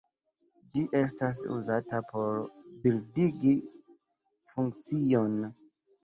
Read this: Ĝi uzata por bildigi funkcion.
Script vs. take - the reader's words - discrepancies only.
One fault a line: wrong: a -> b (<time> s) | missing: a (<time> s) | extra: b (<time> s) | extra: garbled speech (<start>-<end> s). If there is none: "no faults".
extra: estas (1.0 s)